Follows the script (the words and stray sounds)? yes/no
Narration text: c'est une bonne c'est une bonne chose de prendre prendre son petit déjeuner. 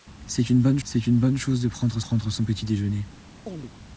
no